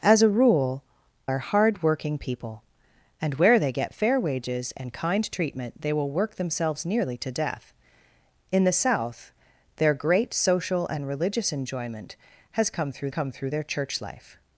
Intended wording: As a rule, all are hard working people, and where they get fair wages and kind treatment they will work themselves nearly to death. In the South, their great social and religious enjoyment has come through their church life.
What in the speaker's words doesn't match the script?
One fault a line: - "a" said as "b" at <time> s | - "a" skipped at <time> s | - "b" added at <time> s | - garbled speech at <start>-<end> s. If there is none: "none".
- "all" skipped at 0.8 s
- "come through" added at 13.1 s